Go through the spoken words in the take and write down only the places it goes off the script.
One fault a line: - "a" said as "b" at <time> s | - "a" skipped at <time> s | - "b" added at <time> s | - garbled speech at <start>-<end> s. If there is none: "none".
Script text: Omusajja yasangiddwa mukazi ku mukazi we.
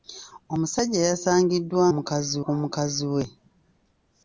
none